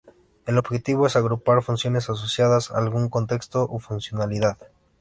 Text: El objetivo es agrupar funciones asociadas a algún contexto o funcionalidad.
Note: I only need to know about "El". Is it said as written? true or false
true